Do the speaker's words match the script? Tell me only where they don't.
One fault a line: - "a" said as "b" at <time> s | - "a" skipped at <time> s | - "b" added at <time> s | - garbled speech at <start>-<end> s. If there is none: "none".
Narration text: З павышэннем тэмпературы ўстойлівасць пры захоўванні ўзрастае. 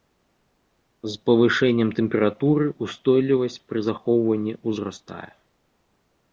none